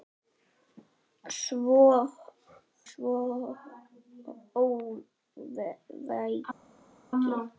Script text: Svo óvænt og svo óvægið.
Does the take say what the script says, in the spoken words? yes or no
no